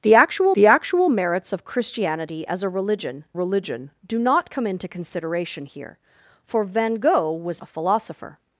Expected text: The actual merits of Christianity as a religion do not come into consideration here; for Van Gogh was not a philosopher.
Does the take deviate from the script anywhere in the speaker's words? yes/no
yes